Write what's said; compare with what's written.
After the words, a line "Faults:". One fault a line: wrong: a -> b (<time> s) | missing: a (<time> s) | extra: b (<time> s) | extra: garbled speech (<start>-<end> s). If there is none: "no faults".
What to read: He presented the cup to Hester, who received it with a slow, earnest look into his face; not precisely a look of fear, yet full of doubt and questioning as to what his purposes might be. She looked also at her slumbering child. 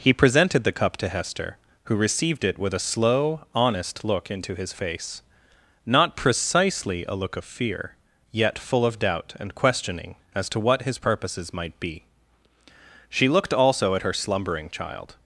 He presented the cup to Hester, who received it with a slow, honest look into his face; not precisely a look of fear, yet full of doubt and questioning as to what his purposes might be. She looked also at her slumbering child.
Faults:
wrong: earnest -> honest (3.5 s)